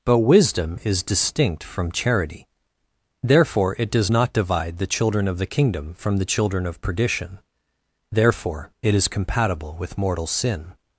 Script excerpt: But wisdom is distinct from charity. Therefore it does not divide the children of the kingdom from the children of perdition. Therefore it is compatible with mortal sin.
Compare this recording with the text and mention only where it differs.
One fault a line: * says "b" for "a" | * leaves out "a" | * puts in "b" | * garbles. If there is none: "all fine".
all fine